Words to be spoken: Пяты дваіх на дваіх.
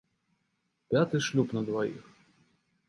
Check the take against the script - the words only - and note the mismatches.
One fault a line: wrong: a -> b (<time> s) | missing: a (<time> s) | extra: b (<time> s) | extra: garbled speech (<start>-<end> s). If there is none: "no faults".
wrong: дваіх -> шлюб (1.3 s)